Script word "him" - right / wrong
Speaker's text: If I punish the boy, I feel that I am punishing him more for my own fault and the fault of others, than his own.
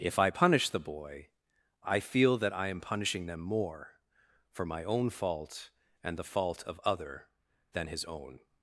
wrong